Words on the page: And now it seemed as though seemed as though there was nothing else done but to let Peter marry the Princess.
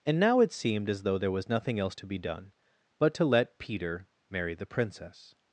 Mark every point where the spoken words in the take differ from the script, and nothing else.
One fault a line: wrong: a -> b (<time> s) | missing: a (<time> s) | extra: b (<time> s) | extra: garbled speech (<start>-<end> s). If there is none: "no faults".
missing: seemed as though (1.2 s)
extra: to be (1.9 s)